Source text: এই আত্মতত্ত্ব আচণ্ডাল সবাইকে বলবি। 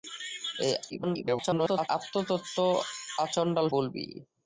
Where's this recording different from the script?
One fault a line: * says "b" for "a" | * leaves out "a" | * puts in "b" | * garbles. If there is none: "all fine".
* garbles
* leaves out "সবাইকে"